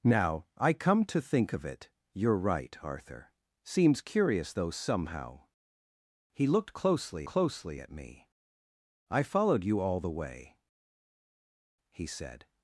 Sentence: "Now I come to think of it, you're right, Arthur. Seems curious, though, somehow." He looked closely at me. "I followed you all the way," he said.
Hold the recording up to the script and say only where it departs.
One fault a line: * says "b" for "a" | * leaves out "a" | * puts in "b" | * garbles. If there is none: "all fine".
* puts in "closely"